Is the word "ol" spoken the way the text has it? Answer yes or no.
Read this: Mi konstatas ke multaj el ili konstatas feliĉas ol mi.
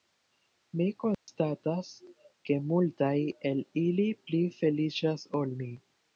yes